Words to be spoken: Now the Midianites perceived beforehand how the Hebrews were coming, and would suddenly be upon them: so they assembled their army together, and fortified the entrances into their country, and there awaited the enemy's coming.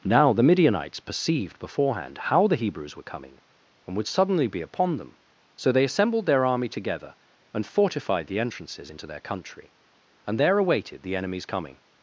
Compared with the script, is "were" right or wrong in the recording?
right